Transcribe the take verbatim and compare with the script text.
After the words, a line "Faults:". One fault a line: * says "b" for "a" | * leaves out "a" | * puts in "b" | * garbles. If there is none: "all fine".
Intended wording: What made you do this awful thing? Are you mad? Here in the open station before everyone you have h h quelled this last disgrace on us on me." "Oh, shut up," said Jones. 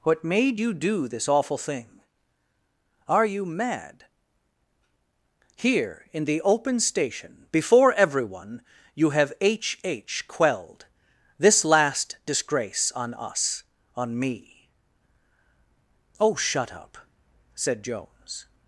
What made you do this awful thing? Are you mad? Here in the open station before everyone you have h h quelled this last disgrace on us on me." "Oh, shut up," said Jones.
Faults:
all fine